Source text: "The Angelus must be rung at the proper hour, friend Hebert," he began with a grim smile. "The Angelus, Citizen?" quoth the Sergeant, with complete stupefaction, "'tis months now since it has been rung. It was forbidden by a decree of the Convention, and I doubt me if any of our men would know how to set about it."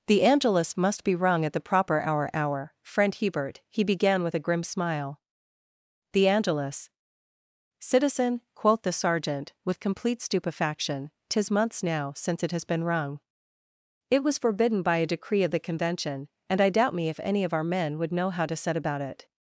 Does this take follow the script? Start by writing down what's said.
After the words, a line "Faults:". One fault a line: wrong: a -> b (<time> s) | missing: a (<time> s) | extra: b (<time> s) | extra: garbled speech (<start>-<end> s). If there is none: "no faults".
"The Angelus must be rung at the proper hour hour, friend Hebert," he began with a grim smile. "The Angelus, Citizen?" quoth the Sergeant, with complete stupefaction, "'tis months now since it has been rung. It was forbidden by a decree of the Convention, and I doubt me if any of our men would know how to set about it."
Faults:
extra: hour (2.3 s)